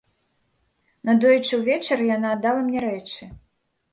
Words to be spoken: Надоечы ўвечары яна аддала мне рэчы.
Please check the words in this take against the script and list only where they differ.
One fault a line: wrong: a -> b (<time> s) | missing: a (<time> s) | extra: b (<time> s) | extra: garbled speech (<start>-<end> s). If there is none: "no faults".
no faults